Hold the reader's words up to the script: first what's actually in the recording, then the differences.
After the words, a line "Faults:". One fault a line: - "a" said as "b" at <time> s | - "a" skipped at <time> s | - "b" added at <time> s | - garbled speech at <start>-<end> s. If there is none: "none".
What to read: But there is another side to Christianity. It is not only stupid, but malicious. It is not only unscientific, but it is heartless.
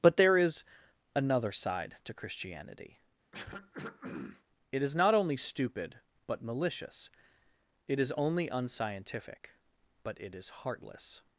But there is another side to Christianity. It is not only stupid, but malicious. It is only unscientific, but it is heartless.
Faults:
- "not" skipped at 8.1 s